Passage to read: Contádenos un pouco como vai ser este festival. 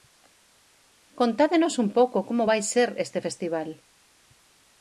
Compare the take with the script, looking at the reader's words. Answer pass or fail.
pass